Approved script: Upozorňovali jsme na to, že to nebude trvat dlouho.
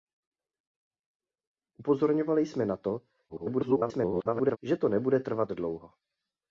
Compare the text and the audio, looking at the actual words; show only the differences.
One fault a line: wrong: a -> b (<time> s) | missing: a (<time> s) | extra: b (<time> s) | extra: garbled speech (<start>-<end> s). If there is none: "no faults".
extra: garbled speech (3.3-4.6 s)